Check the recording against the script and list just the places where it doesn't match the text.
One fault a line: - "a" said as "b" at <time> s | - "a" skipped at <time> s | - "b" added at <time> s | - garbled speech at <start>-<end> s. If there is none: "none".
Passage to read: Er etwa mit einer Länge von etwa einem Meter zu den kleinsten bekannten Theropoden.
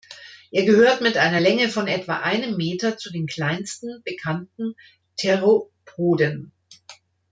- "etwa" said as "gehört" at 0.7 s